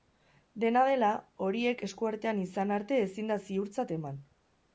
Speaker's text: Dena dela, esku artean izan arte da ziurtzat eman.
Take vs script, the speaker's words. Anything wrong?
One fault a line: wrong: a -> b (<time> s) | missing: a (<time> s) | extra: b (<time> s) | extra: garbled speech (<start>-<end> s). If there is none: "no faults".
extra: horiek (1.5 s)
extra: ezin (3.1 s)